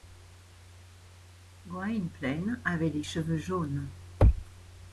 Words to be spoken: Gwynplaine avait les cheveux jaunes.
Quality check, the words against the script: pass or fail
pass